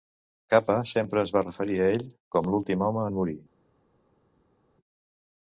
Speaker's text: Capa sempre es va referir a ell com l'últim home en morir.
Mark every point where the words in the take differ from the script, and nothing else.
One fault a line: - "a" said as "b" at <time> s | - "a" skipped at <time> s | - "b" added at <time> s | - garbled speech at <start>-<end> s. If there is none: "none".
none